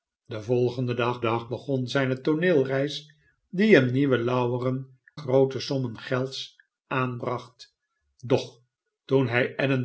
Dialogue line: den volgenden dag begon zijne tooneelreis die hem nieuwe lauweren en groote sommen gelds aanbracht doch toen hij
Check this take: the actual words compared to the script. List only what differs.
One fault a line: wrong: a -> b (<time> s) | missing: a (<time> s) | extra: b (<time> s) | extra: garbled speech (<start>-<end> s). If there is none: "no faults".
extra: dag (1.2 s)
missing: en (5.0 s)